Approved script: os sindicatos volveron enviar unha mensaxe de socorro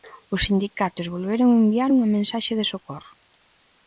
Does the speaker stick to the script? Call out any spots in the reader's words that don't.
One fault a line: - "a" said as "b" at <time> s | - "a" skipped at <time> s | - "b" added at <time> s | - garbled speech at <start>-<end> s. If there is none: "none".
none